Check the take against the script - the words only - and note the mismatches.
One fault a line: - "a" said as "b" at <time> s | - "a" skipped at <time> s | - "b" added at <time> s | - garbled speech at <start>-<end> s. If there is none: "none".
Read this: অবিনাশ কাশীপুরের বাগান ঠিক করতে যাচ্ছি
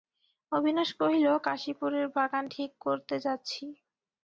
- "কহিল" added at 1.0 s